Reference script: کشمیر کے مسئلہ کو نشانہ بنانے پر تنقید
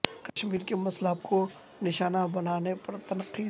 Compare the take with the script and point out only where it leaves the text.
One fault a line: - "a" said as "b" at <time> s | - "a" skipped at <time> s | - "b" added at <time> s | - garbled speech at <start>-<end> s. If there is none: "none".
none